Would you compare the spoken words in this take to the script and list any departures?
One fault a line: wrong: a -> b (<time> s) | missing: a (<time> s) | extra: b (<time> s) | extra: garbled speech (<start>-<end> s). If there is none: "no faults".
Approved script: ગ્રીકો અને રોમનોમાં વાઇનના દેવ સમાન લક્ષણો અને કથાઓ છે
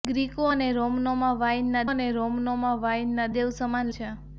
wrong: દેવ સમાન લક્ષણો અને કથાઓ -> અને રોમનોમાં વાઇનના દેવ સમાન (1.9 s)